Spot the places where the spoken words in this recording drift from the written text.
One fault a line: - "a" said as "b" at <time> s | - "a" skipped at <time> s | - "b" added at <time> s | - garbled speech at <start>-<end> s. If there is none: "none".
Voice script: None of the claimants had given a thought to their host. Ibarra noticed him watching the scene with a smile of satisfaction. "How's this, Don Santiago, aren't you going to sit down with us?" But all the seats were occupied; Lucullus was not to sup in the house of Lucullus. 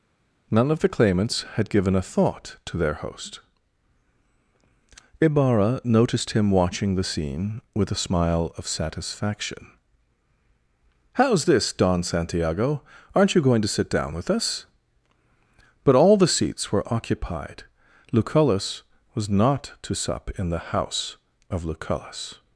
none